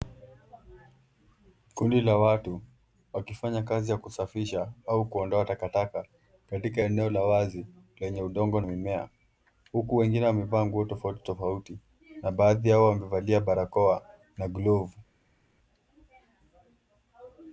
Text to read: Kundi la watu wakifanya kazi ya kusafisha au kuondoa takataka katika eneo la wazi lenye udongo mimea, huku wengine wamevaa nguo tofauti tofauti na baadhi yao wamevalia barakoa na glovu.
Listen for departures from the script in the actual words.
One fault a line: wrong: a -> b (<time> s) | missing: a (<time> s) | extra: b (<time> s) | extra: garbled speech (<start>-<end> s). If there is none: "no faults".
no faults